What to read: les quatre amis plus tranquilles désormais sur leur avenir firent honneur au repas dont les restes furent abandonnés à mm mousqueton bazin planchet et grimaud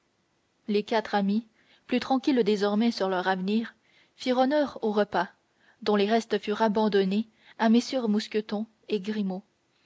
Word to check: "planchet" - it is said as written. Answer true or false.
false